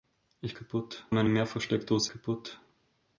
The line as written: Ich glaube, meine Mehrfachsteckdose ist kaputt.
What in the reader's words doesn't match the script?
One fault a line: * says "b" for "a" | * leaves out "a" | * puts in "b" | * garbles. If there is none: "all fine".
* says "kaputt" for "glaube"
* leaves out "ist"